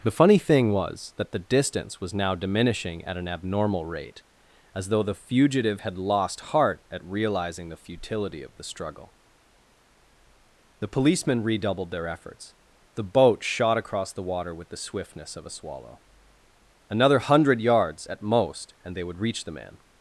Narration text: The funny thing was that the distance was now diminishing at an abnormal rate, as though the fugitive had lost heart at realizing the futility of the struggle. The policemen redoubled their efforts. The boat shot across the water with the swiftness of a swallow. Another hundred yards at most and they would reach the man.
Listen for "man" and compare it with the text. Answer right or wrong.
right